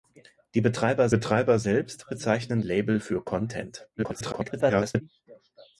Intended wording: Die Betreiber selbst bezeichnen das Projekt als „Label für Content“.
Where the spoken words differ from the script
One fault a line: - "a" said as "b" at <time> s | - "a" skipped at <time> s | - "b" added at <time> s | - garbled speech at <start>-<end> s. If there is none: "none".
- "Betreiber" added at 1.1 s
- "das Projekt als" skipped at 2.6 s
- garbled speech at 4.0-5.0 s